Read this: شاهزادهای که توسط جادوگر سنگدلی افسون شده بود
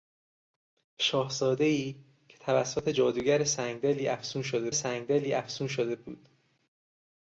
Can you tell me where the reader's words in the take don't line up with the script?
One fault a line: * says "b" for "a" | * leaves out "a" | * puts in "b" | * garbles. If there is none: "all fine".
* puts in "سنگدلی افسون شده"